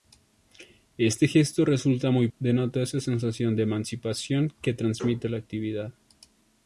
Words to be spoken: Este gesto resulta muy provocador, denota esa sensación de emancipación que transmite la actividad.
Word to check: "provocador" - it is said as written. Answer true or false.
false